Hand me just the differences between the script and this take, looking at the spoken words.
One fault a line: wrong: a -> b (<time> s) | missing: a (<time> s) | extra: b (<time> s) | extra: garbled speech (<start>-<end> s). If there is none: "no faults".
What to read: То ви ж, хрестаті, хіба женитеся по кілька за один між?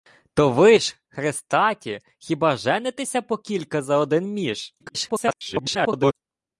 extra: garbled speech (4.8-6.1 s)